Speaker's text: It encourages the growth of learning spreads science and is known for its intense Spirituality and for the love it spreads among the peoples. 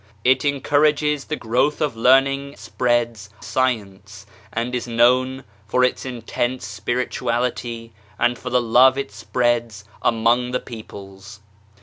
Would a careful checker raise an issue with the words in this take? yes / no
no